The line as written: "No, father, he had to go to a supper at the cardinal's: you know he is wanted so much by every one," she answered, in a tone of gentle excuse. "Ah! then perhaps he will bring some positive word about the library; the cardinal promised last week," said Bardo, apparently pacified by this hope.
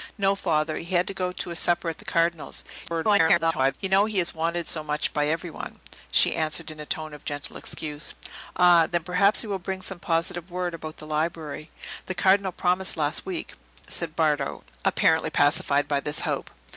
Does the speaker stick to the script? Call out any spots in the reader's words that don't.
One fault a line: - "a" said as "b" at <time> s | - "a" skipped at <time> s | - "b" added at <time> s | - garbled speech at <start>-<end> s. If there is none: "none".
- garbled speech at 2.8-3.7 s